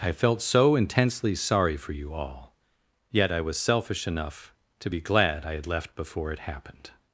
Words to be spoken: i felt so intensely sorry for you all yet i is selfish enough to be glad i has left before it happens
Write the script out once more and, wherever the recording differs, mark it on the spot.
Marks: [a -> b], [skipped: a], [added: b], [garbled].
i felt so intensely sorry for you all yet i [is -> was] selfish enough to be glad i [has -> had] left before it [happens -> happened]